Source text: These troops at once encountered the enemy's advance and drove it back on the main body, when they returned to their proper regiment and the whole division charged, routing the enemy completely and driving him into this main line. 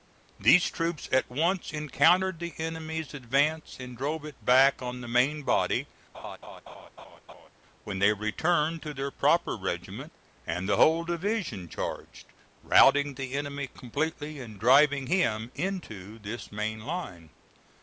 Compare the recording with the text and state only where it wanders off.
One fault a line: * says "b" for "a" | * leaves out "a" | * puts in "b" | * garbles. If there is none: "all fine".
all fine